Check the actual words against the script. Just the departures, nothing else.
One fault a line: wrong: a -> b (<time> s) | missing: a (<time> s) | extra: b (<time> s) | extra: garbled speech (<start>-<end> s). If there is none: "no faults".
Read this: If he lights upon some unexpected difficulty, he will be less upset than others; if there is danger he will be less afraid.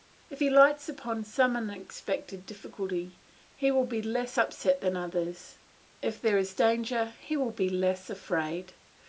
no faults